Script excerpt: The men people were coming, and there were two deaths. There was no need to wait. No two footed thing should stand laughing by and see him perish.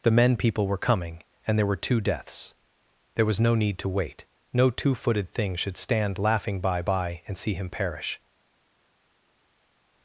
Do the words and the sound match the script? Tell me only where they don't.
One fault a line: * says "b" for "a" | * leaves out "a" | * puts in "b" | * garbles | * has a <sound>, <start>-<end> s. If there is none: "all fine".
* puts in "by"